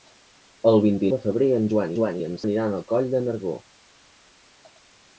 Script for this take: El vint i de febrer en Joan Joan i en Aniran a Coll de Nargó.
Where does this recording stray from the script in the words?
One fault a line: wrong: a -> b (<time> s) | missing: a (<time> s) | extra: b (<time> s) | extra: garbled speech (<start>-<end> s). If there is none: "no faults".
no faults